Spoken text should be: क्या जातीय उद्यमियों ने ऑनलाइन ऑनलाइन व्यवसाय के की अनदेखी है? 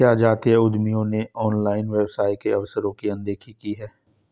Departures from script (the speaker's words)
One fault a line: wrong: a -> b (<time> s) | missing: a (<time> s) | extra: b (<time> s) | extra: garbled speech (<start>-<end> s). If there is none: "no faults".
missing: ऑनलाइन (1.9 s)
extra: अवसरों (2.5 s)
extra: की (3.5 s)